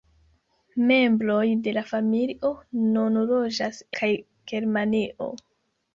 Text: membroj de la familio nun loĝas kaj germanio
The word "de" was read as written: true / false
true